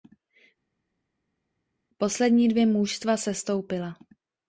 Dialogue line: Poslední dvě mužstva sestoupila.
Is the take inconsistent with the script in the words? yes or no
no